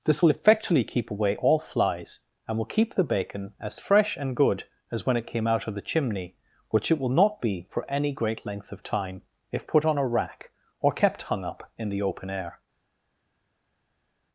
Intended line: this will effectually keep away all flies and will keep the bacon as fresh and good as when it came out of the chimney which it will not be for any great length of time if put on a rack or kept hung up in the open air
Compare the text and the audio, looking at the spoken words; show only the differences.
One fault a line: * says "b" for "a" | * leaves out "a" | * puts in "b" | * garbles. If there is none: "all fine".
all fine